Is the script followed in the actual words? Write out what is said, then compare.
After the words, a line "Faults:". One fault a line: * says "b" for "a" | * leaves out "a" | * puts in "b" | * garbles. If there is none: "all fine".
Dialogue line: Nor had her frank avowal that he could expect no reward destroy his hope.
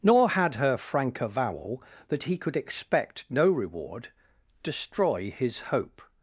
Nor had her frank avowal that he could expect no reward destroy his hope.
Faults:
all fine